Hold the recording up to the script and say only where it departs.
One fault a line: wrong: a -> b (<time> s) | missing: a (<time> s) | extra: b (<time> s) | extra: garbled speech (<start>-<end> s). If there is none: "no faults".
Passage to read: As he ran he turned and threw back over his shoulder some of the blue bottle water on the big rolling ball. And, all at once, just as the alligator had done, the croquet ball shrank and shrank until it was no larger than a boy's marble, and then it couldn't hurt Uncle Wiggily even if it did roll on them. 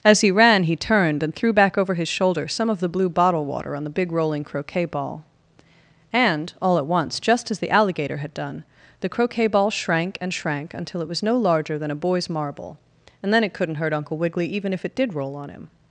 extra: croquet (4.4 s)
wrong: them -> him (15.5 s)